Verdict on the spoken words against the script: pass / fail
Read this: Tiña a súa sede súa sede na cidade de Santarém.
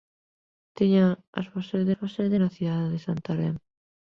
pass